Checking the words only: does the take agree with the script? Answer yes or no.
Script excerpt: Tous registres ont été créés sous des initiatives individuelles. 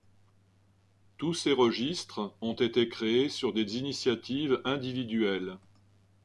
no